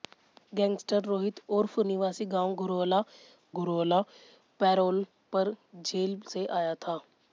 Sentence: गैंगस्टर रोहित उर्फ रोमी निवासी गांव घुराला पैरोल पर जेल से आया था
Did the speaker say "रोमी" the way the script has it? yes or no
no